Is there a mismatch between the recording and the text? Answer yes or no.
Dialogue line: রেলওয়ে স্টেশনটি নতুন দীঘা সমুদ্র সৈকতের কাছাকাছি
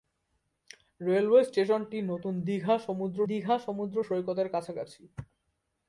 yes